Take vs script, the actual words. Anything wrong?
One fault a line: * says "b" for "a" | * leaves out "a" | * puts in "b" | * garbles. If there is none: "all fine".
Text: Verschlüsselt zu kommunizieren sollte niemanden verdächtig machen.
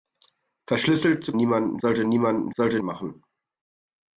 * says "niemanden" for "kommunizieren"
* says "sollte" for "verdächtig"